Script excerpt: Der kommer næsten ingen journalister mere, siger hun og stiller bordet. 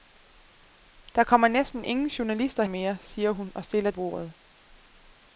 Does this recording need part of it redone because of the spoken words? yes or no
no